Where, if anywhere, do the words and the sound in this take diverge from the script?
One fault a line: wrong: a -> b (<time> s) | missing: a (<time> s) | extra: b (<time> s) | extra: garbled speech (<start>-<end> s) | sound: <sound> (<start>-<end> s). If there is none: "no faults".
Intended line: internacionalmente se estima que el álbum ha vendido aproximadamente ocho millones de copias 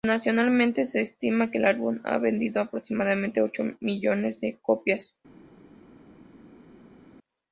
no faults